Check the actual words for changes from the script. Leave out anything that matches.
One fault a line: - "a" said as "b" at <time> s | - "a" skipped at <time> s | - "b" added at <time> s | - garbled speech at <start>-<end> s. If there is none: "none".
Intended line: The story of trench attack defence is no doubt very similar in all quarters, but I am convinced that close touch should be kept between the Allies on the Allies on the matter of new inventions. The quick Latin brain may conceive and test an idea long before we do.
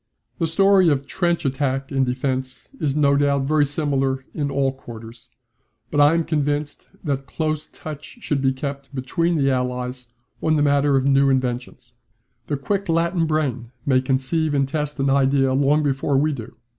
- "and" added at 1.9 s
- "Allies on the" skipped at 10.6 s